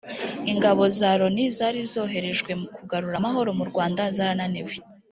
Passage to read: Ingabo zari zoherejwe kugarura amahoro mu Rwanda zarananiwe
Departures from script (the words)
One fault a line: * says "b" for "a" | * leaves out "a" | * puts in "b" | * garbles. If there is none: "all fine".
* puts in "za Loni"